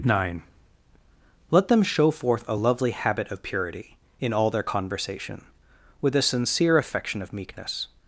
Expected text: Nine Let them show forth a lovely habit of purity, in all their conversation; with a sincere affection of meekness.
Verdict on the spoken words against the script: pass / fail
pass